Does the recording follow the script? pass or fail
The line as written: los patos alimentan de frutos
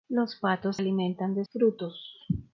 pass